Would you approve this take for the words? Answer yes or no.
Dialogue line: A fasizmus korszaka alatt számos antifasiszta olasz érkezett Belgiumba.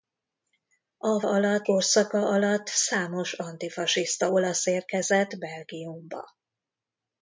no